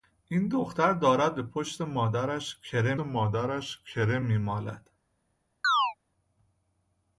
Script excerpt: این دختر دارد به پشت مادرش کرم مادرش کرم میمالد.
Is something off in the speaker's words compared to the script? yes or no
no